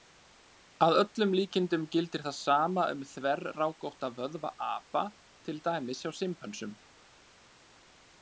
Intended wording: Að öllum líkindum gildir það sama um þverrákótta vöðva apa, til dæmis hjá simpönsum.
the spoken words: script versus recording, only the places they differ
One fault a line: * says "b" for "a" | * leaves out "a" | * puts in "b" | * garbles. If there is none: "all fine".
all fine